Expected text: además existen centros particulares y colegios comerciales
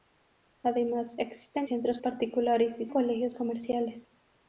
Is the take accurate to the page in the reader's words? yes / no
yes